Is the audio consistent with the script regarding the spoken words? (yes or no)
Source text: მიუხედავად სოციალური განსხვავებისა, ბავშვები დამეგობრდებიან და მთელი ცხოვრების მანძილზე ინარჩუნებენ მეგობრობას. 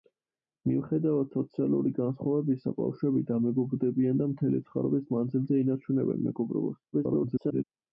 no